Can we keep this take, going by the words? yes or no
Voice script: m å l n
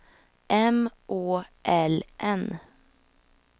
yes